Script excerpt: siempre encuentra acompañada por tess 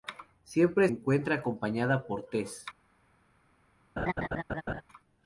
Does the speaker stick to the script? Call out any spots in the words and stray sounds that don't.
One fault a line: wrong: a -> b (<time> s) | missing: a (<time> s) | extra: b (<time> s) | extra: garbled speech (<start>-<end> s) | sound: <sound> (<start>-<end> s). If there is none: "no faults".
sound: laugh (4.0-4.8 s)